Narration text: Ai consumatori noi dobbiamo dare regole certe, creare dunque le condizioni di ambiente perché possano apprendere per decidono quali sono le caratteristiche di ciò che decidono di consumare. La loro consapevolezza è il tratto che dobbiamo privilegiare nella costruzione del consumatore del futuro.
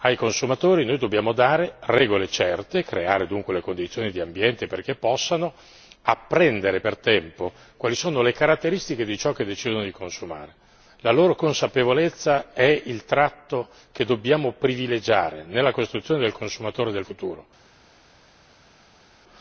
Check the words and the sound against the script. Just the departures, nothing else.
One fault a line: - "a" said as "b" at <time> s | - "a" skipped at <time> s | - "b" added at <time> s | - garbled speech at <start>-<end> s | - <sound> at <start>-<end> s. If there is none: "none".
- "decidono" said as "tempo" at 7.0 s